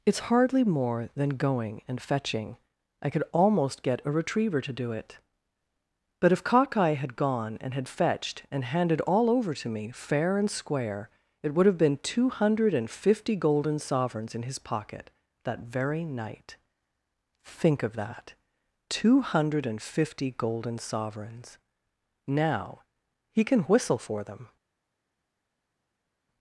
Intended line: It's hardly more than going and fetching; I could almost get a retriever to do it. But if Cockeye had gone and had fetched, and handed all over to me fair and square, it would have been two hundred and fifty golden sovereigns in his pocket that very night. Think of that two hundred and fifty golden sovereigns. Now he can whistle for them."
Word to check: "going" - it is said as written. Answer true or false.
true